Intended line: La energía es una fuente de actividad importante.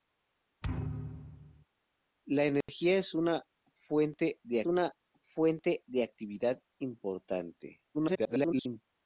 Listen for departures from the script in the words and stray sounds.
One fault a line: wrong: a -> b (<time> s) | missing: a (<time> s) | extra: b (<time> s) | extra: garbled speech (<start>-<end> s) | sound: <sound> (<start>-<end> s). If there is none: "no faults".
sound: thud (0.6-1.7 s)
sound: dropout (2.6-2.7 s)
extra: una fuente de (4.6 s)
extra: garbled speech (7.9-8.8 s)